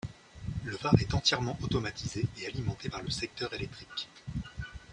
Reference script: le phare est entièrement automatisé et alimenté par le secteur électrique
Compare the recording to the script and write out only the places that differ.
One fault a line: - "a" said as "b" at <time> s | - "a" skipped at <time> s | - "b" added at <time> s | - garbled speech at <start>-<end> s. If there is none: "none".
none